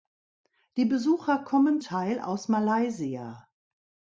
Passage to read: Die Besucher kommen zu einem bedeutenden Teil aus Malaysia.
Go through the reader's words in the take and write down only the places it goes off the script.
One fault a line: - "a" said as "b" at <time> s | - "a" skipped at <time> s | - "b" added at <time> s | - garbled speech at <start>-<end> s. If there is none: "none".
- "zu einem bedeutenden" skipped at 1.8 s